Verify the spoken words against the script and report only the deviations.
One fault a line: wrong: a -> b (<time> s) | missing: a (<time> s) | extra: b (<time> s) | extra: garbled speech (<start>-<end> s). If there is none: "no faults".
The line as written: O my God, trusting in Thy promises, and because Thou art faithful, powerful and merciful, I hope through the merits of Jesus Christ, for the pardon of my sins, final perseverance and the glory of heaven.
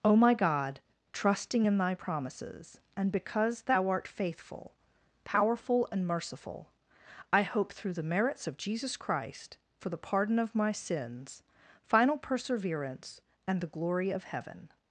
no faults